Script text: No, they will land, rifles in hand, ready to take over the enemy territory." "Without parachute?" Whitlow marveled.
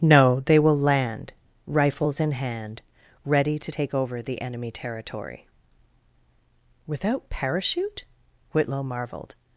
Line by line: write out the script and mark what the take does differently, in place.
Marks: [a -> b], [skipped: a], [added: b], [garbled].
No, they will land, rifles in hand, ready to take over the enemy territory." "Without parachute?" Whitlow marveled.